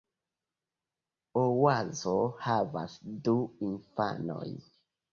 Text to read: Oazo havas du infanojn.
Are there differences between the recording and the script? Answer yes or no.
no